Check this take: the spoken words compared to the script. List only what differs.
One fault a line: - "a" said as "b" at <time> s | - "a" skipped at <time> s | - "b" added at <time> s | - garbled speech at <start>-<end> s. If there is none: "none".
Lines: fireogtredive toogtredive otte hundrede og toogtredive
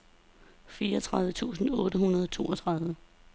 - "toogtredive" said as "tusind" at 1.3 s